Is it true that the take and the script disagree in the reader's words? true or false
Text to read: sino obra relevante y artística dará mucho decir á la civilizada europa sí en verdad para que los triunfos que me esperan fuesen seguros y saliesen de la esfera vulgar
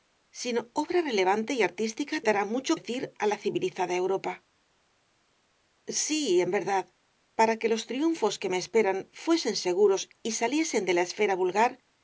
false